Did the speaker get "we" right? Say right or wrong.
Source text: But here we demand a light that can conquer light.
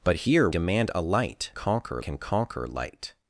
wrong